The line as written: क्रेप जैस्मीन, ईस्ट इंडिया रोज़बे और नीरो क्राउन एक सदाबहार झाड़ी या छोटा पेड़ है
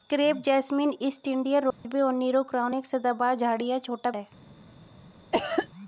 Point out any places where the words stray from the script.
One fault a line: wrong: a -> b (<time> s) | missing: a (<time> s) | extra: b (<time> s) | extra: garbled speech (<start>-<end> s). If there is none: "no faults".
missing: पेड़ (4.1 s)